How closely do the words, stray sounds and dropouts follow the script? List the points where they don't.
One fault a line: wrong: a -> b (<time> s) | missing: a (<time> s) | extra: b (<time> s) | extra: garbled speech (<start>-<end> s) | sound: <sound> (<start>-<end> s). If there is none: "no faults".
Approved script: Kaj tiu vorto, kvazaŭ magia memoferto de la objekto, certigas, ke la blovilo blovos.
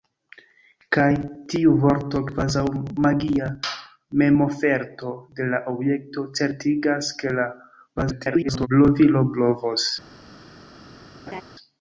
extra: garbled speech (8.0-8.7 s)
sound: laugh (11.3-11.4 s)